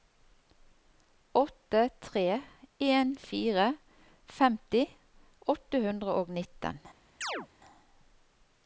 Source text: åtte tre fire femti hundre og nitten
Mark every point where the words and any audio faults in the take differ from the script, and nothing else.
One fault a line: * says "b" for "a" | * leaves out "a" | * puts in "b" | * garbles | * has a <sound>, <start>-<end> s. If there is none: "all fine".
* puts in "en"
* puts in "åtte"
* has a chirp, 7.2-7.5 s